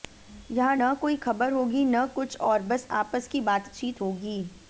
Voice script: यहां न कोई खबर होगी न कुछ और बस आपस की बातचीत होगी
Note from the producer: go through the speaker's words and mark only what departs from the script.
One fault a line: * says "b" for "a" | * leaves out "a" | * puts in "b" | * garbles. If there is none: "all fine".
all fine